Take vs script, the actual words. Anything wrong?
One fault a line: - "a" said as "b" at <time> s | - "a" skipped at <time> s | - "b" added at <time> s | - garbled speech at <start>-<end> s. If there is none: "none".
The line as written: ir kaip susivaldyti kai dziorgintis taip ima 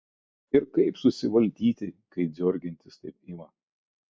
none